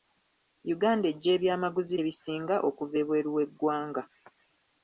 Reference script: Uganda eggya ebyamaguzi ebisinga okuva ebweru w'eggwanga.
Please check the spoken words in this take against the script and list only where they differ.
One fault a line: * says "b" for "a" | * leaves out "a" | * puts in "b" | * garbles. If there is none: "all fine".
all fine